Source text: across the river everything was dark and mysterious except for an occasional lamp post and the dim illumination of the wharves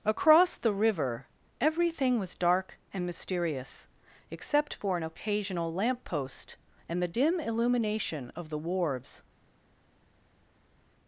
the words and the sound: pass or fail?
pass